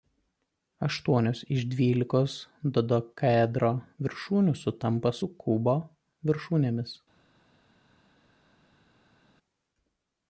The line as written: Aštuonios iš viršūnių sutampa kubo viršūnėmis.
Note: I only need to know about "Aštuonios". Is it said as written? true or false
true